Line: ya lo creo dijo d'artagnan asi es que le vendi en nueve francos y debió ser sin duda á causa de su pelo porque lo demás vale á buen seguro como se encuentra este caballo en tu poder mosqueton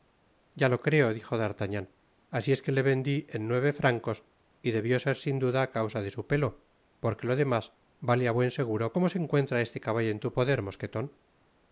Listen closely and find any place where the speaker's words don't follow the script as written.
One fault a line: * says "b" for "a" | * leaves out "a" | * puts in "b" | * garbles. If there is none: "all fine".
all fine